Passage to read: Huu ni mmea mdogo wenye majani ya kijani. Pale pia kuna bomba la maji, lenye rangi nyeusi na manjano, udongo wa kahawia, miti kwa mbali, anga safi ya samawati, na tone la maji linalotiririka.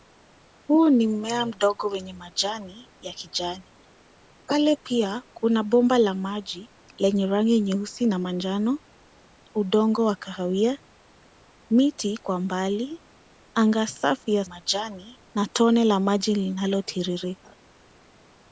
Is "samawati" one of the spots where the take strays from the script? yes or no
yes